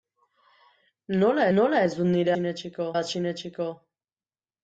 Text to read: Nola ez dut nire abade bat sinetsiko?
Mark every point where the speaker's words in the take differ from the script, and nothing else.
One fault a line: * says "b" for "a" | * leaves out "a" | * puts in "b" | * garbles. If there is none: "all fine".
* puts in "nola"
* says "sinetsiko" for "abade"